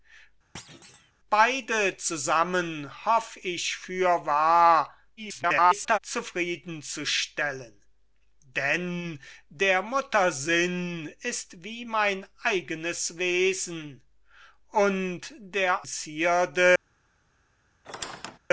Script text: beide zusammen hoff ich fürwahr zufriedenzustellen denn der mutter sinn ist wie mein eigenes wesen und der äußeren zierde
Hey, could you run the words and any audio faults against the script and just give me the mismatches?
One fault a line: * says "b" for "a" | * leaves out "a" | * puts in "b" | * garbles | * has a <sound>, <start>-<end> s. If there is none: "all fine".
* has a thud, 0.5-1.1 s
* garbles
* leaves out "äußeren"
* has a squeak, 17.8-18.4 s